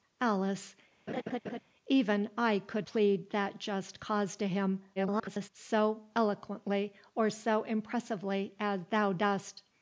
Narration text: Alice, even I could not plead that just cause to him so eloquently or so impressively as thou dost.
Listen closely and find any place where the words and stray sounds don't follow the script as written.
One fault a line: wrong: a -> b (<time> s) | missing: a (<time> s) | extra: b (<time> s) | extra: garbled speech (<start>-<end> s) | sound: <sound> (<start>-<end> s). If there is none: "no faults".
sound: laugh (1.1-1.6 s)
missing: not (2.9 s)
extra: garbled speech (5.0-5.5 s)